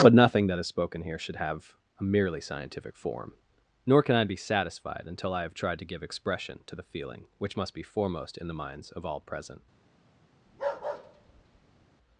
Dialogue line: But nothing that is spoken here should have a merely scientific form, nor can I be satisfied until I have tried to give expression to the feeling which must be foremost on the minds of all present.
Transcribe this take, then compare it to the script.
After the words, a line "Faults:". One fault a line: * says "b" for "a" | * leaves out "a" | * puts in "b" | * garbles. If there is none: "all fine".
But nothing that is spoken here should have a merely scientific form, nor can I be satisfied until I have tried to give expression to the feeling which must be foremost in the minds of all present.
Faults:
* says "in" for "on"